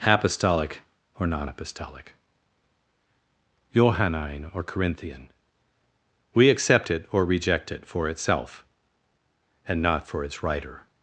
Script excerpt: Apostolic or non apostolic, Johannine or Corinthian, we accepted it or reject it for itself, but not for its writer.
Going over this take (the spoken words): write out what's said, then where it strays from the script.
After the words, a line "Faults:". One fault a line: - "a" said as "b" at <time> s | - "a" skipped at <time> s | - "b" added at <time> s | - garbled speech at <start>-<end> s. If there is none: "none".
Apostolic or non apostolic, Johannine or Corinthian, we accept it or reject it for itself, and not for its writer.
Faults:
- "accepted" said as "accept" at 6.5 s
- "but" said as "and" at 9.7 s